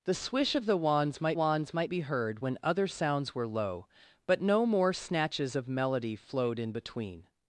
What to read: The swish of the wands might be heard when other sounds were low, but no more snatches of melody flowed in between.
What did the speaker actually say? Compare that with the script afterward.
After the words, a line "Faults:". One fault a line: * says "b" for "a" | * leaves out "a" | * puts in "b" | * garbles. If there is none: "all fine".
The swish of the wands might wands might be heard when other sounds were low, but no more snatches of melody flowed in between.
Faults:
* puts in "wands might"